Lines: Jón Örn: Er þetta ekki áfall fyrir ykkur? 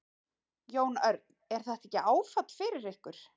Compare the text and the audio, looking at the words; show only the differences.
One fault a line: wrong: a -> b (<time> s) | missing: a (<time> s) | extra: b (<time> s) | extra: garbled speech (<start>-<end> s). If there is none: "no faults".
no faults